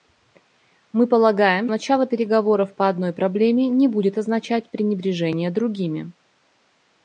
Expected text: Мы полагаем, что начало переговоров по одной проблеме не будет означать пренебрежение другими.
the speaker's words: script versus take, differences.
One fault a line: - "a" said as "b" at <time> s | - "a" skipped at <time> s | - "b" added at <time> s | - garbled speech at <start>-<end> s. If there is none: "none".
- "что" skipped at 1.7 s